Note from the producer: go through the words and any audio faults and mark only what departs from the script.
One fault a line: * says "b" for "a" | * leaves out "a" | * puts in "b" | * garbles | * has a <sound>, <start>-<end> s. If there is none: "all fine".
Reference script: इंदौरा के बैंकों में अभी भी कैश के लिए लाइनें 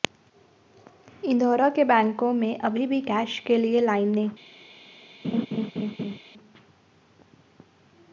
* has a laugh, 5.2-6.2 s